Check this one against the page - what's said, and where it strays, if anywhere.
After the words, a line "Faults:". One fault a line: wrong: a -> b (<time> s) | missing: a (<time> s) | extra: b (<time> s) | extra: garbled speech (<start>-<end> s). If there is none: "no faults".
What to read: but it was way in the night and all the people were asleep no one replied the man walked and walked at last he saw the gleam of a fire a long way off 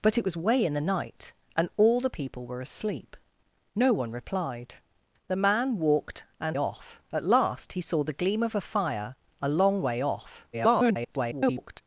but it was way in the night and all the people were asleep no one replied the man walked and off at last he saw the gleam of a fire a long way off [garbled]
Faults:
wrong: walked -> off (6.6 s)
extra: garbled speech (10.5-11.8 s)